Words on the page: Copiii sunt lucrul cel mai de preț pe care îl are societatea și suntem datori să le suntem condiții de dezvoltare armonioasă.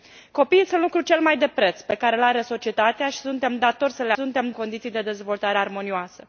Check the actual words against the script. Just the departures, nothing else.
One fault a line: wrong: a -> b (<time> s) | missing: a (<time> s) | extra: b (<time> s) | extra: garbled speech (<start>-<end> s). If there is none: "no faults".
no faults